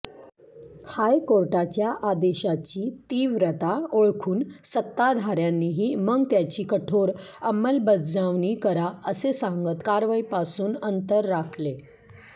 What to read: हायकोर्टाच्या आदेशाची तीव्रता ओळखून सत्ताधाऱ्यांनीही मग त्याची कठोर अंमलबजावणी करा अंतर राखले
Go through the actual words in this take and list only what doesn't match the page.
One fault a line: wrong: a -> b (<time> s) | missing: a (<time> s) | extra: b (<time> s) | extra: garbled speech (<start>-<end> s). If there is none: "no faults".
extra: असे सांगत कारवाईपासून (9.1 s)